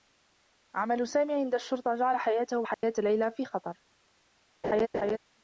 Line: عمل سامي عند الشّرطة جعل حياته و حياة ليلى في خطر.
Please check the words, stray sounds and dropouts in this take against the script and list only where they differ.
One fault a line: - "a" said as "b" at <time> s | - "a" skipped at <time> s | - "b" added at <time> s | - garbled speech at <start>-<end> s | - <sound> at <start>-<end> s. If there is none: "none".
- dropout at 2.7-2.8 s
- laugh at 4.6-5.2 s